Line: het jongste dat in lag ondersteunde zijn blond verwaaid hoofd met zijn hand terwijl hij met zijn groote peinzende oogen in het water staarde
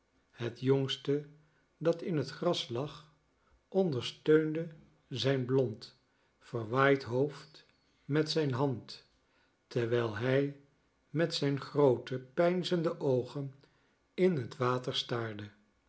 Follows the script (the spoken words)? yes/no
no